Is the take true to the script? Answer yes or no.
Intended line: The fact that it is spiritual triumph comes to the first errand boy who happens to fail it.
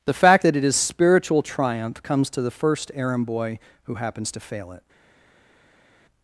yes